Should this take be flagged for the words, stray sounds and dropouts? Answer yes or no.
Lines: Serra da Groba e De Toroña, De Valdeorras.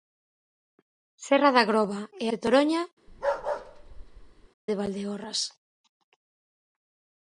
yes